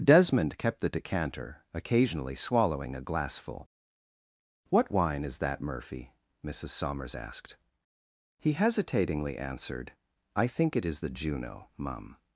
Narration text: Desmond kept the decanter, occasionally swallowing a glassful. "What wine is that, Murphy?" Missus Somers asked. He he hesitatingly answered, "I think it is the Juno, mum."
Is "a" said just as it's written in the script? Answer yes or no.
yes